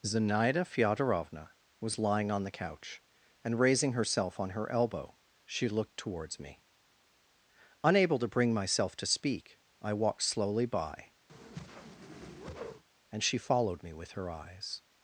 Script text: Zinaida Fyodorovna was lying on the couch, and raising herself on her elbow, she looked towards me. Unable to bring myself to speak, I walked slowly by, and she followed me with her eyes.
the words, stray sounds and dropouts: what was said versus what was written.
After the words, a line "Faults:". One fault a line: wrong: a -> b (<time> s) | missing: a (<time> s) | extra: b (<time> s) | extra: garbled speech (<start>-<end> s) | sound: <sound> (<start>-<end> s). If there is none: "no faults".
Zinaida Fyodorovna was lying on the couch, and raising herself on her elbow, she looked towards me. Unable to bring myself to speak, I walked slowly by, and she followed me with her eyes.
Faults:
sound: whoosh (11.3-12.8 s)